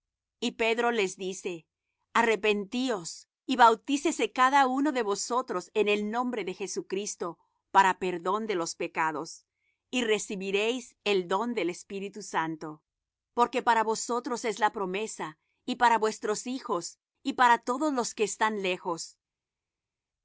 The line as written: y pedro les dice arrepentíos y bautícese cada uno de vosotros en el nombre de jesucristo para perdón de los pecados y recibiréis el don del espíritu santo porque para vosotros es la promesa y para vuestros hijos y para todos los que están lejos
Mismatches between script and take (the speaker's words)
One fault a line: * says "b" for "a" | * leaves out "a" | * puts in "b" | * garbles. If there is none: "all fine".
all fine